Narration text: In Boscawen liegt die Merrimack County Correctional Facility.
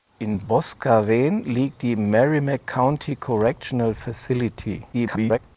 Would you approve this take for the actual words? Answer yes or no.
no